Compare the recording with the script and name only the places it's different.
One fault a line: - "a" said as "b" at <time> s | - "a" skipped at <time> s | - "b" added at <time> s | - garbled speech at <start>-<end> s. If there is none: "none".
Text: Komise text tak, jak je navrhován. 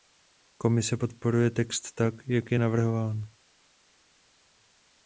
- "podporuje" added at 0.9 s